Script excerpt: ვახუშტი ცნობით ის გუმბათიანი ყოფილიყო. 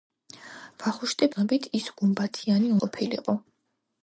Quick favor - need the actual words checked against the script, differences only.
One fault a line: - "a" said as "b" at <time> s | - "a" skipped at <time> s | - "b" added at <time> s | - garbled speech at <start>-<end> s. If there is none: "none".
none